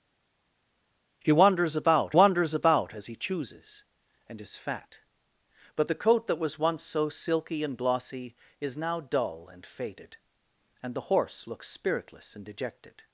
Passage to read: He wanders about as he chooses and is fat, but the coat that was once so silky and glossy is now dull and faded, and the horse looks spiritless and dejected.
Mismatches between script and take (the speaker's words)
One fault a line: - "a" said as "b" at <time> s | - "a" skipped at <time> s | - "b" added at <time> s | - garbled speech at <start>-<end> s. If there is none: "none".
- "wanders about" added at 2.1 s